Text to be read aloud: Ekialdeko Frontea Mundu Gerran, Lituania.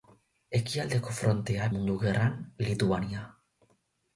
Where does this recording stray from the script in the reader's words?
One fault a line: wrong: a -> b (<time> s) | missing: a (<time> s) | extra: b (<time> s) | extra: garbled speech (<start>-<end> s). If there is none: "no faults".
no faults